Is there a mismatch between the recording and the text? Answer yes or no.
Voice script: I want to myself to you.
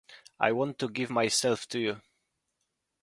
yes